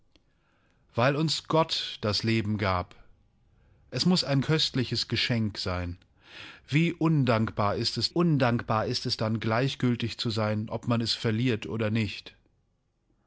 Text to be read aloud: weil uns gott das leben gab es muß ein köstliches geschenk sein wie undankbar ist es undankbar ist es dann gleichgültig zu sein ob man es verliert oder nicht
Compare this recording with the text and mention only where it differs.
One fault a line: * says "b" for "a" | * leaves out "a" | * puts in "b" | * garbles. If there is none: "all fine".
all fine